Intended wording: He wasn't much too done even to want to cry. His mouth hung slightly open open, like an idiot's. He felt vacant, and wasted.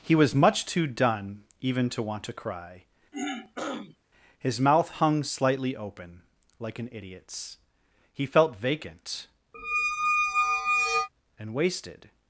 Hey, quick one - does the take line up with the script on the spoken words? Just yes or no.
no